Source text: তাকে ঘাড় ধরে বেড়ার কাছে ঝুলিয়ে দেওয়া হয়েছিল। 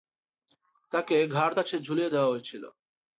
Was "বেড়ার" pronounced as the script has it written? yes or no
no